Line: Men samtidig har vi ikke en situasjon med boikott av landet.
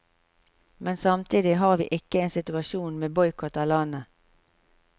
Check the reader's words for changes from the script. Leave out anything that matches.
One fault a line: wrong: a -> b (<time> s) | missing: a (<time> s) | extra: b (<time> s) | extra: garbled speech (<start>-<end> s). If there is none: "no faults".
no faults